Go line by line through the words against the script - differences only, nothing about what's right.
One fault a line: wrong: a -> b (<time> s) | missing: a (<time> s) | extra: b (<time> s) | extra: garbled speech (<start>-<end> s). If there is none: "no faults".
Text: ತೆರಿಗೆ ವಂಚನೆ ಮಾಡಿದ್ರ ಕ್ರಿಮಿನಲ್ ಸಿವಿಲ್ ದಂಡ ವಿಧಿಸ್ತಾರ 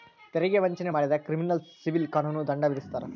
extra: ಕಾನೂನು (2.1 s)